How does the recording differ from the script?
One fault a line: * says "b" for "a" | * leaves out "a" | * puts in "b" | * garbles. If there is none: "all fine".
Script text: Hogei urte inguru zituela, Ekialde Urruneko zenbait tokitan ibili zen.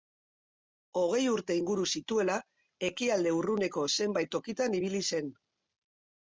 all fine